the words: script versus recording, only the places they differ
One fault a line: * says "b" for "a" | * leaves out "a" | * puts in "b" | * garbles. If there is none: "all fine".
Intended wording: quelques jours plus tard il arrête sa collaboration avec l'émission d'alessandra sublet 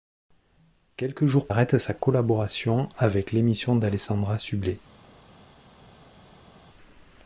* leaves out "plus tard il"